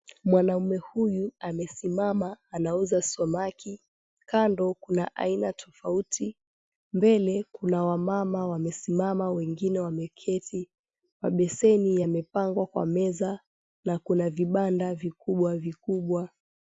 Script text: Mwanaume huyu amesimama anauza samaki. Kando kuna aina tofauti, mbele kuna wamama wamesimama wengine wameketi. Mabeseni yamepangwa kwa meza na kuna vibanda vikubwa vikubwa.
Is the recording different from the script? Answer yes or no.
no